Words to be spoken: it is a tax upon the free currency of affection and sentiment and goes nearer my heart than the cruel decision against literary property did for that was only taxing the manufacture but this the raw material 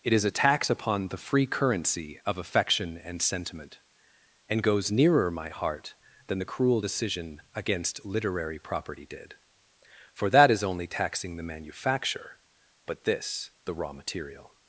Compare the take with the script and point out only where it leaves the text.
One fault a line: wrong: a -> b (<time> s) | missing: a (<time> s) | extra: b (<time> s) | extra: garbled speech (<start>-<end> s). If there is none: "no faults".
wrong: was -> is (10.5 s)